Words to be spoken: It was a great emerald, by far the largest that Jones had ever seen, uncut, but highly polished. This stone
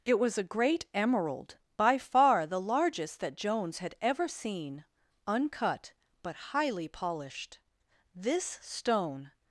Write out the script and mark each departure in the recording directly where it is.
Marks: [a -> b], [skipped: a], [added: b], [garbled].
It was a great emerald, by far the largest that Jones had ever seen, uncut, but highly polished. This stone